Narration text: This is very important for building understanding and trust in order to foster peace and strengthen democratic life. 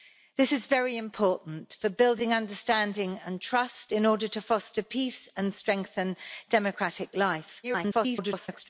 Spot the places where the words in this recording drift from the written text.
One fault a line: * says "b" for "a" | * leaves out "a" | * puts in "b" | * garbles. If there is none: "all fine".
* garbles